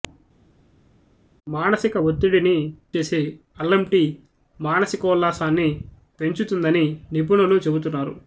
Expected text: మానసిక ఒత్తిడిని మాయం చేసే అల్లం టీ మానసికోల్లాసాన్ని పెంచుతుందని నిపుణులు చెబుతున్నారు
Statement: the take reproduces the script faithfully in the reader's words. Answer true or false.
false